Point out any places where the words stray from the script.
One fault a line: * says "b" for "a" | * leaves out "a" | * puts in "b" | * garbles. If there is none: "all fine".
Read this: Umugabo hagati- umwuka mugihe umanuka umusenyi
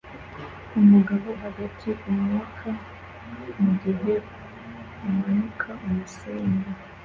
all fine